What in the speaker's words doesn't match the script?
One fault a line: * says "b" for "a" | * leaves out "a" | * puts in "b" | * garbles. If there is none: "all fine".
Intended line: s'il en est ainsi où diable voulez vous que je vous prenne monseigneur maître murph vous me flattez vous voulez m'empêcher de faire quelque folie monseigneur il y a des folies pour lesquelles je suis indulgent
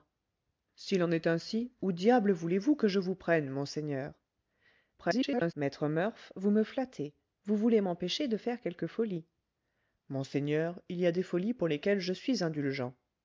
* garbles